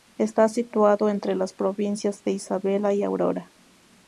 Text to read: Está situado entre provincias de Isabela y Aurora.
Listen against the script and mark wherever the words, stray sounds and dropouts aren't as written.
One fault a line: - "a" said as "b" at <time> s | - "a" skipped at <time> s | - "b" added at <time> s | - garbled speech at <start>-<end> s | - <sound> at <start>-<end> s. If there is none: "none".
- "las" added at 1.3 s